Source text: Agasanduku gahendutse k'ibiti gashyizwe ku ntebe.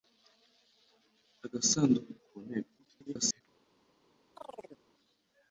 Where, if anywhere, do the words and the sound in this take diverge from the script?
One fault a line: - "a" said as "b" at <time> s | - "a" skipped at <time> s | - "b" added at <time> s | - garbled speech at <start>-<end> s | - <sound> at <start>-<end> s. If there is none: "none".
- "gahendutse k'ibiti gashyizwe" skipped at 2.1 s
- garbled speech at 2.8-3.4 s
- chirp at 4.4-4.8 s